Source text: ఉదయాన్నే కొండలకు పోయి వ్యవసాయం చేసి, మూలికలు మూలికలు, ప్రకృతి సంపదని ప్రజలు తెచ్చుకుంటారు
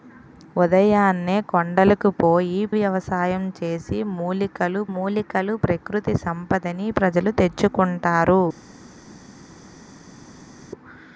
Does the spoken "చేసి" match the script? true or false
true